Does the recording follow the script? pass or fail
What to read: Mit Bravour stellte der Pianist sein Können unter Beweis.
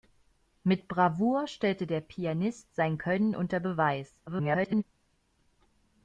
fail